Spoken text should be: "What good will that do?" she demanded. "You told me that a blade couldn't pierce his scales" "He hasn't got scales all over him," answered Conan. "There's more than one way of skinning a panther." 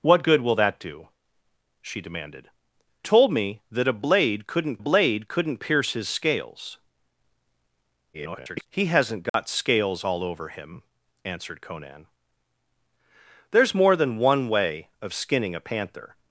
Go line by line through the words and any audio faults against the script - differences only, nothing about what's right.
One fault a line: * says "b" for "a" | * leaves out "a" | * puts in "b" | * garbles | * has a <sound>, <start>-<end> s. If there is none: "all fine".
* leaves out "You"
* puts in "blade couldn't"
* garbles
* has a dropout, 9.3-9.3 s